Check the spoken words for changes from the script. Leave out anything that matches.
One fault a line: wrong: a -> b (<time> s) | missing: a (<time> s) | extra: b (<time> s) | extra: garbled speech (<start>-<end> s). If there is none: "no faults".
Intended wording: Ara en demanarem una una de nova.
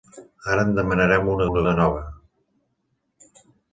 no faults